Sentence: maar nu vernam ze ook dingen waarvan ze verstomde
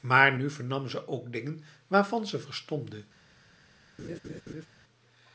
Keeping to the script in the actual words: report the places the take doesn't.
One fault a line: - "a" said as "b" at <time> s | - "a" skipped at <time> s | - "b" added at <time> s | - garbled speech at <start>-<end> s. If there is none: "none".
none